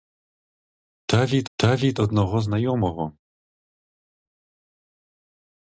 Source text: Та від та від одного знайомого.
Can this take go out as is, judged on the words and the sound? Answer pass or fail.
pass